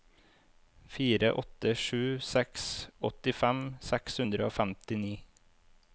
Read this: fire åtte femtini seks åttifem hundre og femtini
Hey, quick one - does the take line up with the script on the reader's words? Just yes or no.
no